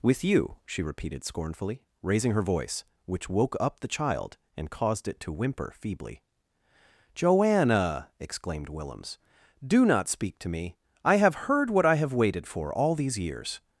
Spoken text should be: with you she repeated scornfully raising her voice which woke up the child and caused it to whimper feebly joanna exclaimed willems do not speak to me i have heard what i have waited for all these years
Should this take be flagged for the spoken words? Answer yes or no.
no